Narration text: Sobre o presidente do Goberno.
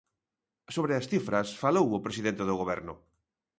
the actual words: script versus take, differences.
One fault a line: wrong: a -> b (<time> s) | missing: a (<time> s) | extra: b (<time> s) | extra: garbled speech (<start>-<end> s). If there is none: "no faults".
extra: as cifras falou (0.9 s)